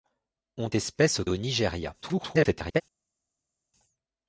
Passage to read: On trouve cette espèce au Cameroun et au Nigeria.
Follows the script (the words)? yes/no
no